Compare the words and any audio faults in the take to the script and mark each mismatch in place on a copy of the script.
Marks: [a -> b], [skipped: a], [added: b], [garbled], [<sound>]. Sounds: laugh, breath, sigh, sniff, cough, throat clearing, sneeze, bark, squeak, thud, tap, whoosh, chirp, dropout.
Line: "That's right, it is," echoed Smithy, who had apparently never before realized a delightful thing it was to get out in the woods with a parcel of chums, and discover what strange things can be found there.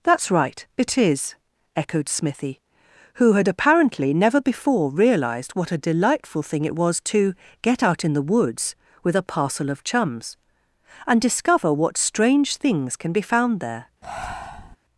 "That's right, it is," echoed Smithy, who had apparently never before realized [added: what] a delightful thing it was to get out in the woods with a parcel of chums, and discover what strange things can be found there. [breath]